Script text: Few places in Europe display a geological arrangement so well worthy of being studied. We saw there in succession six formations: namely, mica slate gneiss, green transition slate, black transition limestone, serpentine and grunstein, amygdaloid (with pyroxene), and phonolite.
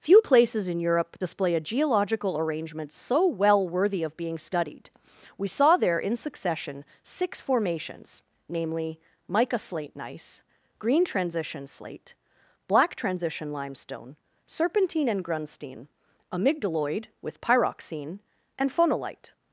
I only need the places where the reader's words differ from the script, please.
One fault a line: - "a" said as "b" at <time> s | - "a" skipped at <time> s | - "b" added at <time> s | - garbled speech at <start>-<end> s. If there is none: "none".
none